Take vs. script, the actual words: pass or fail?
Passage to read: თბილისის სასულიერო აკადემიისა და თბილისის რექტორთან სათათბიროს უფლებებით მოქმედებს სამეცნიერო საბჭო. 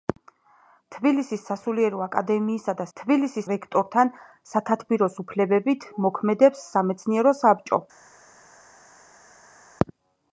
pass